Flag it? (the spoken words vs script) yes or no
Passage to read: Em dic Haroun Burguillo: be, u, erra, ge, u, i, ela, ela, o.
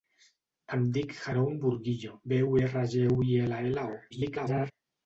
yes